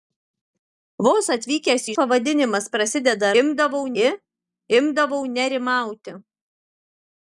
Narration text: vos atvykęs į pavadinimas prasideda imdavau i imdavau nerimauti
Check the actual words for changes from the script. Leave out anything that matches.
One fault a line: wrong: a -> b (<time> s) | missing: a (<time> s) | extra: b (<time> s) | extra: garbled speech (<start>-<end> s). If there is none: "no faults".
no faults